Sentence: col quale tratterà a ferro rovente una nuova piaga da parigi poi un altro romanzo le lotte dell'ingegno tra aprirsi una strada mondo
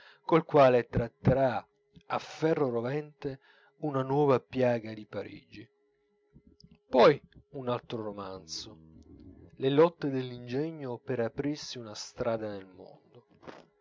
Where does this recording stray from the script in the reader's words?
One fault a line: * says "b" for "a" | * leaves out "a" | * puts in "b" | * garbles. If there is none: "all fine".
* says "di" for "da"
* says "per" for "tra"
* puts in "nel"